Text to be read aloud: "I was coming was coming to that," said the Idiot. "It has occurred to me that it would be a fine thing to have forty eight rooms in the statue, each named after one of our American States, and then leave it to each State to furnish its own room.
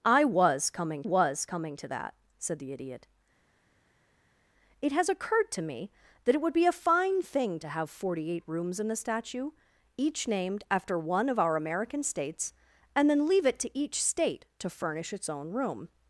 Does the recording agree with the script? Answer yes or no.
yes